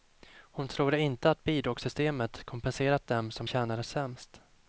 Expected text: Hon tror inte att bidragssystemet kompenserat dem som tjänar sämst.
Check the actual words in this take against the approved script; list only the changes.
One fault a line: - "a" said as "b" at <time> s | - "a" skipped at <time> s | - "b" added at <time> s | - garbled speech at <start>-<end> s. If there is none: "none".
none